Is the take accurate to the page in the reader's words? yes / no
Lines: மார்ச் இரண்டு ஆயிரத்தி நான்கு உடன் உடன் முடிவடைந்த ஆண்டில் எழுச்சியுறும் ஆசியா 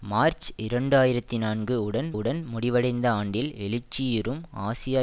yes